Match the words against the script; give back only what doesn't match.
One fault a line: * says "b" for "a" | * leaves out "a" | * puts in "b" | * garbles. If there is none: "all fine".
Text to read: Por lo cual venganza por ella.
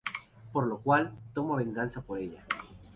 * puts in "toma"